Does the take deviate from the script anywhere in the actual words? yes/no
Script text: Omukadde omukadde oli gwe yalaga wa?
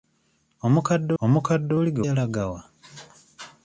no